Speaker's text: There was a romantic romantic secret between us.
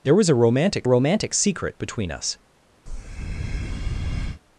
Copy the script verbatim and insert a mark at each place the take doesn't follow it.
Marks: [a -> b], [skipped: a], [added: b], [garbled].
There was a romantic romantic secret between us.